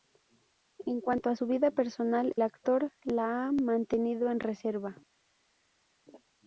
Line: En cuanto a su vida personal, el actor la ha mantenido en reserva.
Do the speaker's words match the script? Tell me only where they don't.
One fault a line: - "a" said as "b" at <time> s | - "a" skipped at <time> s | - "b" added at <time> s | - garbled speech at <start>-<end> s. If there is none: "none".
- "el" skipped at 2.3 s